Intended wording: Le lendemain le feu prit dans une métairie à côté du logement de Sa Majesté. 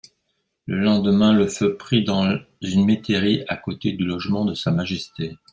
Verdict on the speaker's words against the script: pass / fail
pass